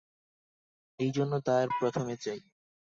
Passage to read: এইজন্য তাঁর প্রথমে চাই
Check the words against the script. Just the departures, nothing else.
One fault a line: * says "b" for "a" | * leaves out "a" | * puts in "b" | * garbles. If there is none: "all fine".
all fine